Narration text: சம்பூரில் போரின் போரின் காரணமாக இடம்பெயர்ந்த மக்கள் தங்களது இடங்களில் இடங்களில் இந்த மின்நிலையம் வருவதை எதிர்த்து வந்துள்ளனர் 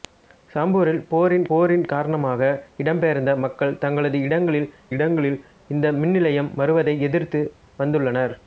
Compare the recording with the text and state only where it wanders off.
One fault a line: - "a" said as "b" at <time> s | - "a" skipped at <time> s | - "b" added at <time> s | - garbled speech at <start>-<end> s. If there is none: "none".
none